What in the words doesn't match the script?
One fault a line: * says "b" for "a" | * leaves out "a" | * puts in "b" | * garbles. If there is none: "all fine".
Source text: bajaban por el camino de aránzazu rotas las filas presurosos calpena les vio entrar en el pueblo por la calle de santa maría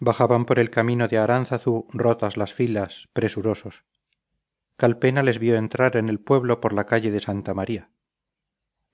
all fine